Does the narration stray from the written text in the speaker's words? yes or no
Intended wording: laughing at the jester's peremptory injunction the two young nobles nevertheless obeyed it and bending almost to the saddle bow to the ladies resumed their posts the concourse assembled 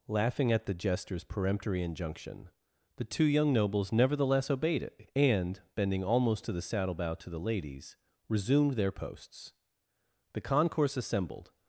no